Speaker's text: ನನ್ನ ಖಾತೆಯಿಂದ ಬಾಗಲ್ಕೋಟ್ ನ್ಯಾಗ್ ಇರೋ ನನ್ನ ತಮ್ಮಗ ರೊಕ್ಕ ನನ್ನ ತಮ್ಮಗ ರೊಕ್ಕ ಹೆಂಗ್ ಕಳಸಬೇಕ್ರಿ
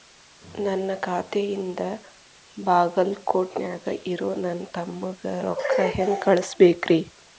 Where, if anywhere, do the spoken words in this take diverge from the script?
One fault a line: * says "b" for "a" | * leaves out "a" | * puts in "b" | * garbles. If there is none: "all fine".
* leaves out "ನನ್ನ ತಮ್ಮಗ ರೊಕ್ಕ"